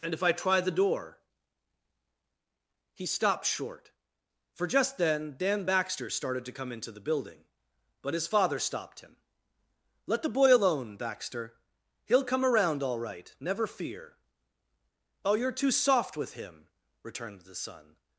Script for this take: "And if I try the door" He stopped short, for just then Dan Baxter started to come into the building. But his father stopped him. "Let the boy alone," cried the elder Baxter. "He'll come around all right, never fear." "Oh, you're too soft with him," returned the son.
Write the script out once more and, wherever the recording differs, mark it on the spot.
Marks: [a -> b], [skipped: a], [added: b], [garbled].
"And if I try the door" He stopped short, for just then Dan Baxter started to come into the building. But his father stopped him. "Let the boy alone," [skipped: cried the elder] Baxter. "He'll come around all right, never fear." "Oh, you're too soft with him," returned the son.